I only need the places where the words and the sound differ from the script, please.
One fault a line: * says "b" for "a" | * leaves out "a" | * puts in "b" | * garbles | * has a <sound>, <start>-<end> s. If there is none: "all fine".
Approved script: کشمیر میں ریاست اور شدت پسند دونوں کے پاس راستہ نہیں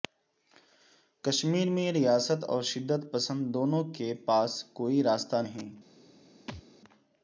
* puts in "کوئی"
* has a thud, 6.5-6.6 s